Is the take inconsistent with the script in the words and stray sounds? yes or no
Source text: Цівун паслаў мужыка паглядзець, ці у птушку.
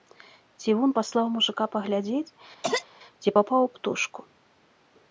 yes